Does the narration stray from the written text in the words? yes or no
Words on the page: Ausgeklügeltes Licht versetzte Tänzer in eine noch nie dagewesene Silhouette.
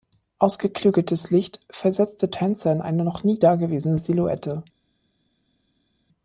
no